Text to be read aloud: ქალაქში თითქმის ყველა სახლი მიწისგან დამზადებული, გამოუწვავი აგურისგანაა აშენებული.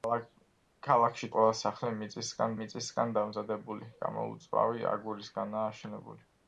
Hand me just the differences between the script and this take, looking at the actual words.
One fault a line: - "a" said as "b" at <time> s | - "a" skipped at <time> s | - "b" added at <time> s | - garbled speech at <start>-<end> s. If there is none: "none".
- "თითქმის" skipped at 1.3 s
- "მიწისგან" added at 2.6 s